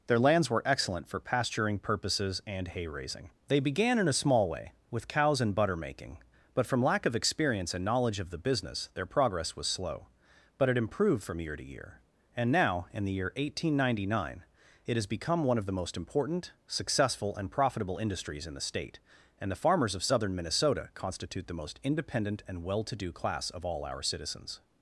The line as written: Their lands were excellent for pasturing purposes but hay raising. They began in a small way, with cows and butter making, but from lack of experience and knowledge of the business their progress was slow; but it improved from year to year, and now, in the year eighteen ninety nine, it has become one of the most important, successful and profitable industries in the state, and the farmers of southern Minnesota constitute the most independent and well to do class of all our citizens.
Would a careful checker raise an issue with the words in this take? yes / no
yes